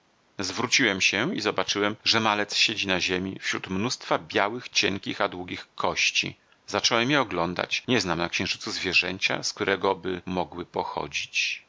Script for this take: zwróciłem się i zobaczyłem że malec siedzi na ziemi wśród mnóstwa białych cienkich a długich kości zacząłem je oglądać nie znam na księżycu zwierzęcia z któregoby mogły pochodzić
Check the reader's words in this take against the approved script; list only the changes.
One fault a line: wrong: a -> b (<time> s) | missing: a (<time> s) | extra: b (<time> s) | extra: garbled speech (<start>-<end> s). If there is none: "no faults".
no faults